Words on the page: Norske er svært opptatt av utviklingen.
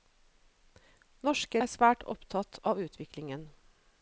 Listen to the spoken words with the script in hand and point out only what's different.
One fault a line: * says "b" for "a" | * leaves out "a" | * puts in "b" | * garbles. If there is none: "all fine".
all fine